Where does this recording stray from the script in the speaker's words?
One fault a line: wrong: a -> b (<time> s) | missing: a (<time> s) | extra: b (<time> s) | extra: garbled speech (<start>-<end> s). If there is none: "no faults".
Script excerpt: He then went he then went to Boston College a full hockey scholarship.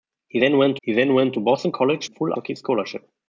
no faults